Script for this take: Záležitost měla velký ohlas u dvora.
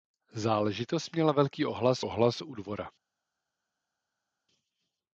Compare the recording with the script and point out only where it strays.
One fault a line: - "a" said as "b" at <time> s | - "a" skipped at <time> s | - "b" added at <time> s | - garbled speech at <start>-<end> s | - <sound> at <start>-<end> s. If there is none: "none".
- "ohlas" added at 2.0 s